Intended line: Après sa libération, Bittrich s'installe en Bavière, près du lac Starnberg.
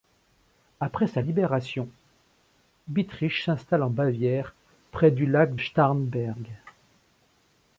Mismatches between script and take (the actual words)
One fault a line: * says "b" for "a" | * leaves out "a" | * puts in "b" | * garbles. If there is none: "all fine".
all fine